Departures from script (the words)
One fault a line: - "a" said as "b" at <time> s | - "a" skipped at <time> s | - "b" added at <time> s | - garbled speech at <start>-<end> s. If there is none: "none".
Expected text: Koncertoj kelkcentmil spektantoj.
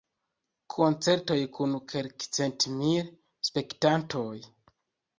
- "kun" added at 1.6 s